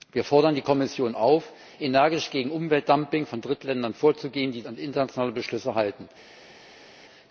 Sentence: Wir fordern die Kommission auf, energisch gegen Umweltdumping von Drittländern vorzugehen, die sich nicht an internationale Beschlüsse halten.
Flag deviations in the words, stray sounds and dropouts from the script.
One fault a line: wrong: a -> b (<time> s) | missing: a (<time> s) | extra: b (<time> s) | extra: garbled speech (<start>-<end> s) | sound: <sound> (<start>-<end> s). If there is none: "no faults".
missing: sich nicht (4.6 s)